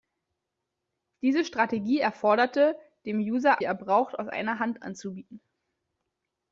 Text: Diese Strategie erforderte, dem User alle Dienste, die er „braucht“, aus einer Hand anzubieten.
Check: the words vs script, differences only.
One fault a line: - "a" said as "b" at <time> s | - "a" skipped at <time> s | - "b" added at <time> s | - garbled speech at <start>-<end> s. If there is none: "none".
- "alle Dienste die" skipped at 3.6 s